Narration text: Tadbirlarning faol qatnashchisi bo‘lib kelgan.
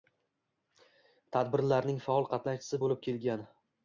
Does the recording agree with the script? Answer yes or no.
yes